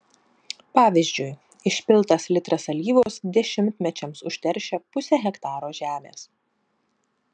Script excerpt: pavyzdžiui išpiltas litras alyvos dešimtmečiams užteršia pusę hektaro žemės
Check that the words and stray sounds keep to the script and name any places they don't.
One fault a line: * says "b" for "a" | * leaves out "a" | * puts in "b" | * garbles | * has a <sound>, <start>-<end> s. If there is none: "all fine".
* has a dropout, 3.0-3.1 s